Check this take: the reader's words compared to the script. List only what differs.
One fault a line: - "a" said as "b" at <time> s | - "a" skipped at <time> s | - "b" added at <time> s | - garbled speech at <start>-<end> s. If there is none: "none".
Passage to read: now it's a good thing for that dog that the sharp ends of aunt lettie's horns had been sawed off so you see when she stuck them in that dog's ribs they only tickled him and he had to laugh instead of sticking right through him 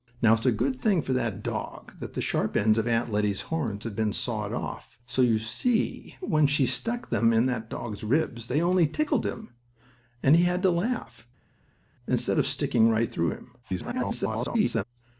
- garbled speech at 13.6-14.8 s